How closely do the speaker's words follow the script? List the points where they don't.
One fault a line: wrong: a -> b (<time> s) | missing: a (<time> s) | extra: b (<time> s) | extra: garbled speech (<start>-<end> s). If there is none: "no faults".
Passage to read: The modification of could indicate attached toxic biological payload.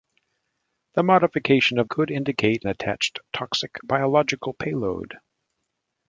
no faults